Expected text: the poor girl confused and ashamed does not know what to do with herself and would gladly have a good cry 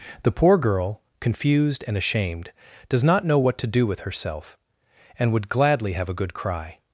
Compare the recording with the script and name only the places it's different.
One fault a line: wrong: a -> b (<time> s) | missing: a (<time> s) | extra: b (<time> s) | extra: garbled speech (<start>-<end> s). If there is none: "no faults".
no faults